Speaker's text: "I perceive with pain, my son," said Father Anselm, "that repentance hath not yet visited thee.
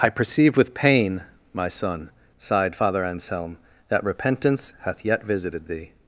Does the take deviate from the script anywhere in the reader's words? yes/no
yes